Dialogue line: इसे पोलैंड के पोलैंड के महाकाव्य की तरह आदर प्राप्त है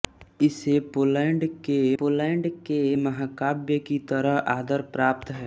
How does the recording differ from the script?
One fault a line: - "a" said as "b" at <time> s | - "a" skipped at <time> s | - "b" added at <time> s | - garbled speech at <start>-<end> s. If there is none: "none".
none